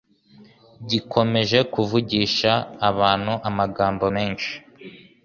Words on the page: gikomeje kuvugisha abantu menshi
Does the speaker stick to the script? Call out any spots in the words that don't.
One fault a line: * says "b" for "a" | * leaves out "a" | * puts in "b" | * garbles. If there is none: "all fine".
* puts in "amagambo"